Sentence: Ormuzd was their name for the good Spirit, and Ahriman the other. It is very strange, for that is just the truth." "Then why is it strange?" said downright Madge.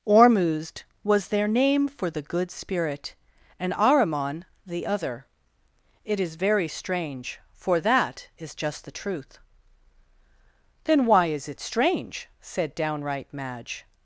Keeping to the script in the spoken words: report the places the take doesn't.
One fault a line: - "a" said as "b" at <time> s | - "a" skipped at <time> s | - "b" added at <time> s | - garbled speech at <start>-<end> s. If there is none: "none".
none